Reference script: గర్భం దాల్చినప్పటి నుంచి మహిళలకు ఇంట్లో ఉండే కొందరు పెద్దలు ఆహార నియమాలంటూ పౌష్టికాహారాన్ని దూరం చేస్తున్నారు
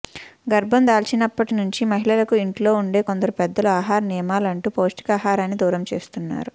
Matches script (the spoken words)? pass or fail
pass